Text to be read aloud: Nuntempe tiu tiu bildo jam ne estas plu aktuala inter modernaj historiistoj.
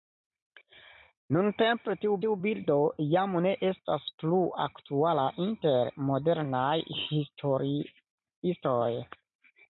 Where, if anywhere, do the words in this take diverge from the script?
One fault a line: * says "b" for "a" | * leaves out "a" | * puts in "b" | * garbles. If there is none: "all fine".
all fine